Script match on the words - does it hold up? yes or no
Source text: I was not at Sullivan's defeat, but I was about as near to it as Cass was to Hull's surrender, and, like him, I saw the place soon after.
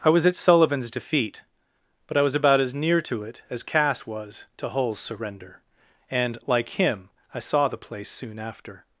no